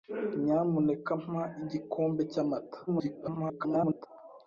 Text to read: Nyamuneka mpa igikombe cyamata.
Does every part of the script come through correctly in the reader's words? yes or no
no